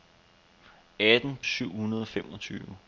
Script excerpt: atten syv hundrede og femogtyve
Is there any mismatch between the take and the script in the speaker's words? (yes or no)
no